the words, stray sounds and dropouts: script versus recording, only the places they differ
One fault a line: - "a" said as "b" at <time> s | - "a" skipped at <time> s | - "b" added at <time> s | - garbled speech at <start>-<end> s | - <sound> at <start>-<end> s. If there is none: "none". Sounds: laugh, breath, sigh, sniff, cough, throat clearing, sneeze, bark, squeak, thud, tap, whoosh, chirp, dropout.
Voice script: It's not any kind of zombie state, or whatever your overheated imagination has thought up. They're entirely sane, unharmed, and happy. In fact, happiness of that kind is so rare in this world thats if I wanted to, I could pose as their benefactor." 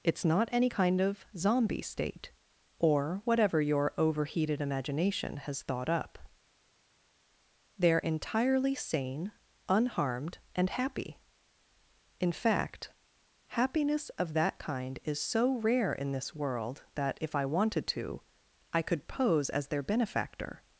- "thats" said as "that" at 16.9 s